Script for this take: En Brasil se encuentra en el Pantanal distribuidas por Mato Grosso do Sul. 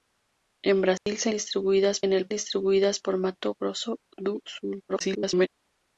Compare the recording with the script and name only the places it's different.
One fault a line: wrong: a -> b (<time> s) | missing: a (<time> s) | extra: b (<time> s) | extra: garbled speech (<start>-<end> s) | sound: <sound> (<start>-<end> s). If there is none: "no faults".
sound: dropout (1.0-1.1 s)
wrong: encuentra -> distribuidas (1.3 s)
missing: Pantanal (2.3 s)
extra: garbled speech (4.9-5.5 s)